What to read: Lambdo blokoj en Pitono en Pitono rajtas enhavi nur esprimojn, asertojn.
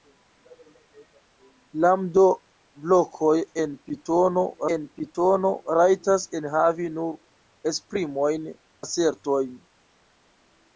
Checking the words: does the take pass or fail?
pass